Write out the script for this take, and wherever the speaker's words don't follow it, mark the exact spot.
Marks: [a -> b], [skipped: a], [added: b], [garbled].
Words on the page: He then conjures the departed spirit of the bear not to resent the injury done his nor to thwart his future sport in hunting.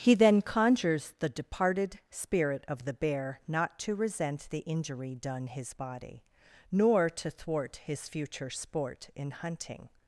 He then conjures the departed spirit of the bear not to resent the injury done his [added: body] nor to thwart his future sport in hunting.